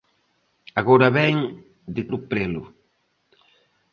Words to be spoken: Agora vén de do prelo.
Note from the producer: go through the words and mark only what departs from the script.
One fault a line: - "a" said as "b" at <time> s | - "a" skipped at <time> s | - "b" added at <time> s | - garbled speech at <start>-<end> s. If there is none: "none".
none